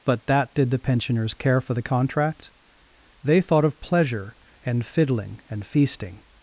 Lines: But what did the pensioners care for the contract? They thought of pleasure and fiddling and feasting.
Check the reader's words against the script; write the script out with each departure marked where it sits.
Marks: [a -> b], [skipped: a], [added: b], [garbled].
But [what -> that] did the pensioners care for the contract? They thought of pleasure and fiddling and feasting.